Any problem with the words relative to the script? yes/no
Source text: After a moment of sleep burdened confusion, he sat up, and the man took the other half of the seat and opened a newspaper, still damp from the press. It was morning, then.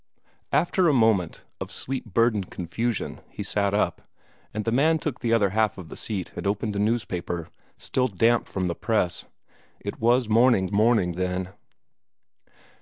yes